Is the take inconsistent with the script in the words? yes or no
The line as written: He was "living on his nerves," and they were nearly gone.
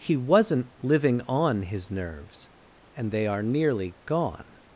yes